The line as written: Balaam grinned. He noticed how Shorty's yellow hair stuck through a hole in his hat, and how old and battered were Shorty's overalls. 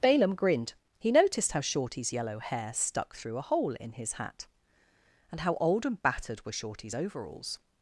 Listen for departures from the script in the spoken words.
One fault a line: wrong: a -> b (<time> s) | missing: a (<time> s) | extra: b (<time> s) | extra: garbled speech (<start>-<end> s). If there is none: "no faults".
no faults